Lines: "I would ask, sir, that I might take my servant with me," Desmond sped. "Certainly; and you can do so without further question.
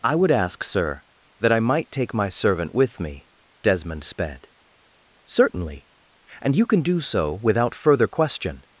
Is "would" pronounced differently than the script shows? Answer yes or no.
no